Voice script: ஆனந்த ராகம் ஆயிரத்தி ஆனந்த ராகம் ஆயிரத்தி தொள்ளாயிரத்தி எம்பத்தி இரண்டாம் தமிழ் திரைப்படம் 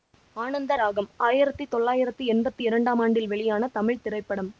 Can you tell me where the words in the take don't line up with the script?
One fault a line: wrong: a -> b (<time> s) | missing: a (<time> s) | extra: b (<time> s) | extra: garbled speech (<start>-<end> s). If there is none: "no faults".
missing: ஆனந்த ராகம் ஆயிரத்தி (1.6 s)
extra: ஆண்டில் வெளியான (3.0 s)